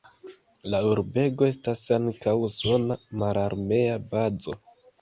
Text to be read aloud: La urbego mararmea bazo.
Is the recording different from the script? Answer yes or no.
yes